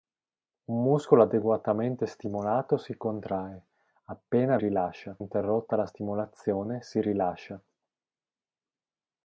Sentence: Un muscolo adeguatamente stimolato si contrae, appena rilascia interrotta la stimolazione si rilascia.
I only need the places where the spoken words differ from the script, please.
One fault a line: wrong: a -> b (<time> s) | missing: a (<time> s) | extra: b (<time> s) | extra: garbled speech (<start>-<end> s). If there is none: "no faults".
no faults